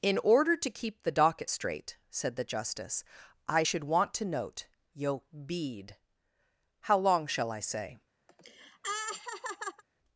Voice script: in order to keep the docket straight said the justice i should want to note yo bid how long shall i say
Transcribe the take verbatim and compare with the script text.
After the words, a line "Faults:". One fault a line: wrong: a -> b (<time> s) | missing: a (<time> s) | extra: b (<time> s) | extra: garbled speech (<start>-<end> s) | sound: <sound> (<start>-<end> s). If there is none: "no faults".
in order to keep the docket straight said the justice i should want to note yo bead how long shall i say
Faults:
wrong: bid -> bead (5.5 s)
sound: laugh (8.3-9.8 s)